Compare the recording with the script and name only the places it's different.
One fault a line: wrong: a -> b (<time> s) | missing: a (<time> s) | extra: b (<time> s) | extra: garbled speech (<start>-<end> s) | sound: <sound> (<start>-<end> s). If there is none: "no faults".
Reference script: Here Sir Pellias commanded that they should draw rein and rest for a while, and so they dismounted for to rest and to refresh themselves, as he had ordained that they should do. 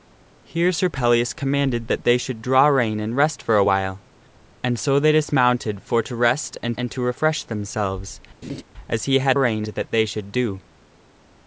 extra: and (6.8 s)
sound: laugh (8.4-8.6 s)
wrong: ordained -> rein (9.3 s)